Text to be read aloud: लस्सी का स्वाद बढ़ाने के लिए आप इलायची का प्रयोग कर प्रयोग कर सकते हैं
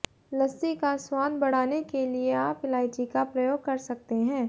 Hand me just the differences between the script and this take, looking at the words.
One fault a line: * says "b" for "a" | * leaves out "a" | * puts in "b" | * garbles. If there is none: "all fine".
* leaves out "प्रयोग कर"